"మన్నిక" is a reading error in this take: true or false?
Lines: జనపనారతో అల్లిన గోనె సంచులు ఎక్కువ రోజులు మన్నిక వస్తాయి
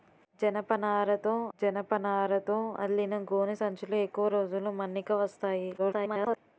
false